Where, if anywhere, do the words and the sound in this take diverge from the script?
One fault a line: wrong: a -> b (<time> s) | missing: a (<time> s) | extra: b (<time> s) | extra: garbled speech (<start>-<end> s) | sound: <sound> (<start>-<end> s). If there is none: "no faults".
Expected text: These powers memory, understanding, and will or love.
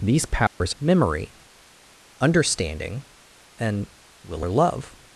sound: dropout (0.5-0.6 s)